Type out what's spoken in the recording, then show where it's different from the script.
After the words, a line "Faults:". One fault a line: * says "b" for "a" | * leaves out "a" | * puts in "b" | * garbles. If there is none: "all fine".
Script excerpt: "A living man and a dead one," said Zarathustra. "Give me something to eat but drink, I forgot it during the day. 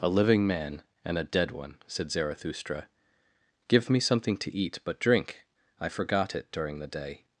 "A living man and a dead one," said Zarathustra. "Give me something to eat but drink, I forgot it during the day.
Faults:
all fine